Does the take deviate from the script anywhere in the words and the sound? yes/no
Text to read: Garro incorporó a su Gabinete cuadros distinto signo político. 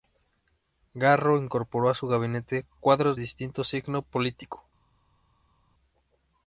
no